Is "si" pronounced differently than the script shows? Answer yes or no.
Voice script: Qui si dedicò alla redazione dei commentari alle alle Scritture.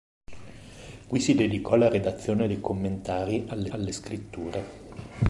no